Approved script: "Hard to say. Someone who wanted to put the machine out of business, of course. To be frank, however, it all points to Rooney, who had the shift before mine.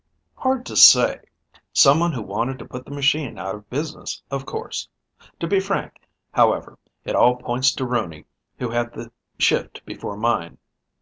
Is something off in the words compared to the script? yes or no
no